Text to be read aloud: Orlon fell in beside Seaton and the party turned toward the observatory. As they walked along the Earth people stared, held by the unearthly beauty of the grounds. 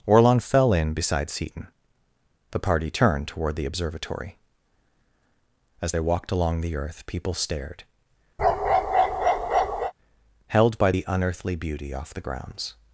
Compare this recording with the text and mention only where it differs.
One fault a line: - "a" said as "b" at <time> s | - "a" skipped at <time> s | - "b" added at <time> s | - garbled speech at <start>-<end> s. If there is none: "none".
- "and" skipped at 1.7 s
- "of" said as "off" at 11.9 s